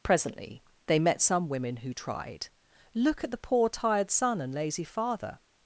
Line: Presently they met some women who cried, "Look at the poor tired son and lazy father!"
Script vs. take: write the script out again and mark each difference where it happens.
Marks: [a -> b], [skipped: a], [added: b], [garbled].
Presently they met some women who [cried, -> tried] "Look at the poor tired son and lazy father!"